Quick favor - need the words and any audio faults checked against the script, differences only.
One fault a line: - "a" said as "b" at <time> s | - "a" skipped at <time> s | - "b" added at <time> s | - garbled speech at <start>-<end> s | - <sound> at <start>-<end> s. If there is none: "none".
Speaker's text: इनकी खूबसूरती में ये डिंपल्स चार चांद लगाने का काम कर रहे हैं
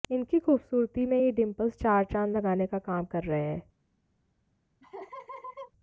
- laugh at 4.8-5.7 s